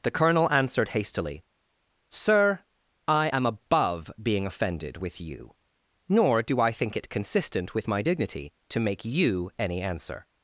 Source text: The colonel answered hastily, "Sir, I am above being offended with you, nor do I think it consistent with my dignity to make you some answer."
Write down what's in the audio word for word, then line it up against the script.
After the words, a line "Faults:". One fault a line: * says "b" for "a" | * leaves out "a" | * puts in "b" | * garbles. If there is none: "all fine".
The colonel answered hastily, "Sir, I am above being offended with you, nor do I think it consistent with my dignity to make you any answer."
Faults:
* says "any" for "some"